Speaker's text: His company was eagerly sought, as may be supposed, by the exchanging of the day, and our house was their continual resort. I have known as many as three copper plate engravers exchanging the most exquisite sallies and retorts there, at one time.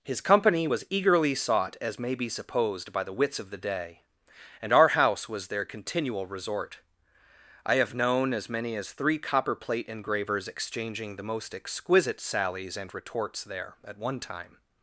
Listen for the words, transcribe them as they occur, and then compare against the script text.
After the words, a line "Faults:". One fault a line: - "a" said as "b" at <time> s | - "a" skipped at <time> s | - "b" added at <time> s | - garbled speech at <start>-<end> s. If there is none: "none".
His company was eagerly sought, as may be supposed, by the wits of the day, and our house was their continual resort. I have known as many as three copper plate engravers exchanging the most exquisite sallies and retorts there, at one time.
Faults:
- "exchanging" said as "wits" at 3.1 s